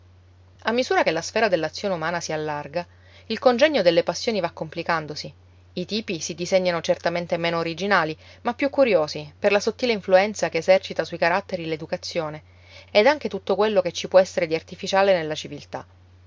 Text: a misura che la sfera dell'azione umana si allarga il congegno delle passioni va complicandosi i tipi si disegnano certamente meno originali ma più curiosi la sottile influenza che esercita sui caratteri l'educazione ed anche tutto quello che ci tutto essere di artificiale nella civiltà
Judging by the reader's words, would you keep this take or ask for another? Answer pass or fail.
fail